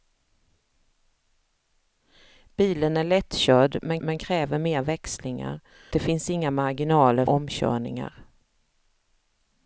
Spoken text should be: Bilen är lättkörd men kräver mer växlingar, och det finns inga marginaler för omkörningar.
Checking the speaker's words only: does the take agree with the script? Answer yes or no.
no